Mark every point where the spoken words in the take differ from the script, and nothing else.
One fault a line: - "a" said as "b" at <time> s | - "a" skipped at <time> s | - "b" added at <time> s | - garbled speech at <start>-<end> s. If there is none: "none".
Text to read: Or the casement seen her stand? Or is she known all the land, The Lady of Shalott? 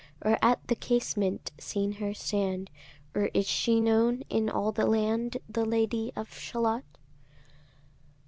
- "at" added at 0.4 s
- "in" added at 4.3 s